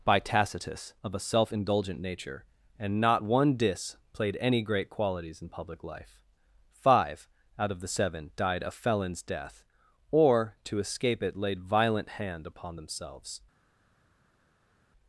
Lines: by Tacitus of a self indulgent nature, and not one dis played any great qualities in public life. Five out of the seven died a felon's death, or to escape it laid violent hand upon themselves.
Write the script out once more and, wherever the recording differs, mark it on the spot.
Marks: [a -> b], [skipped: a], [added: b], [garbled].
by Tacitus of a self indulgent nature, and not one dis played any great qualities in public life. Five out of the seven died a felon's death, or to escape it laid violent hand upon themselves.